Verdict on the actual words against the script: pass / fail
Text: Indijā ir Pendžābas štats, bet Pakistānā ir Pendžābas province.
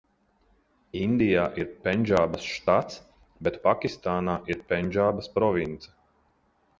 pass